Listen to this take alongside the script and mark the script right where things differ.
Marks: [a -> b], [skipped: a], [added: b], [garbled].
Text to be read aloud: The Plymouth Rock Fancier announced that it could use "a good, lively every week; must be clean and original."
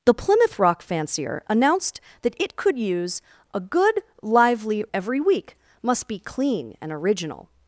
The Plymouth Rock Fancier announced that it could use "a good, lively every week; must be clean and original."